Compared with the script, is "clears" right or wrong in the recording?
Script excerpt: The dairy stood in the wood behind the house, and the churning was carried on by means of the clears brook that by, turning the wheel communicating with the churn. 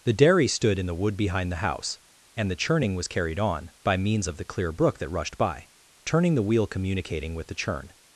wrong